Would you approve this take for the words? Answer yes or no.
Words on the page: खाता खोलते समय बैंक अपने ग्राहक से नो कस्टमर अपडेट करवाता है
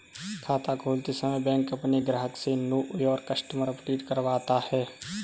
no